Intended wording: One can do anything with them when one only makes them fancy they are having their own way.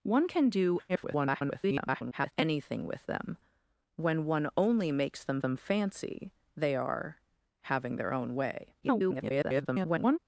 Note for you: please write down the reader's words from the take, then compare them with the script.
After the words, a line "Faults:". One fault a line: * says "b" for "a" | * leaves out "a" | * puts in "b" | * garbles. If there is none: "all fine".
One can do [garbled] anything with them when one only makes them them fancy they are having their own way. [garbled]
Faults:
* garbles
* puts in "them"
* garbles